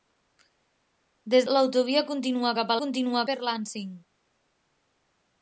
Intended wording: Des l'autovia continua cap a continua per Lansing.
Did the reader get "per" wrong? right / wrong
right